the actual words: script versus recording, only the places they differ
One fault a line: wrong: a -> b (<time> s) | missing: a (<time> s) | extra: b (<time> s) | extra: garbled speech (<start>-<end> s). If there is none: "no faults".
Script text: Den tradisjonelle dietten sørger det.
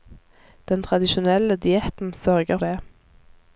no faults